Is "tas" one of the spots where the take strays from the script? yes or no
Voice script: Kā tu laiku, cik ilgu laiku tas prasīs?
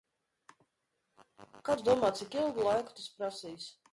no